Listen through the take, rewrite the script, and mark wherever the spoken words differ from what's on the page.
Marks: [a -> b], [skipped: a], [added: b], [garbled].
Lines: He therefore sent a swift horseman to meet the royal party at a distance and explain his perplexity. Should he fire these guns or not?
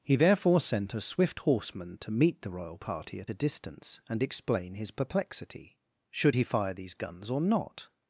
He therefore sent a swift horseman to meet the royal party at a distance and explain his perplexity. Should he fire these guns or not?